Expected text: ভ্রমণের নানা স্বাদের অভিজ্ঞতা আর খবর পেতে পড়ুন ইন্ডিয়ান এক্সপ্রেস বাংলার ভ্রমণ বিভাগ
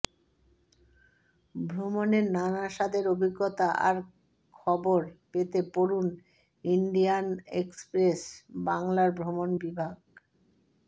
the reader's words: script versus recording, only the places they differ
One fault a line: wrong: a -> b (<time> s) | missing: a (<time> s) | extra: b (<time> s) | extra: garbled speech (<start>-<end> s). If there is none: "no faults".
no faults